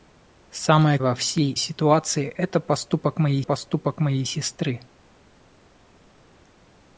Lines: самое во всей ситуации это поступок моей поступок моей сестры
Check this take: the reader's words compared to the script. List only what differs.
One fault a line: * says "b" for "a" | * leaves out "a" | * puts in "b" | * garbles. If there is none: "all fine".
all fine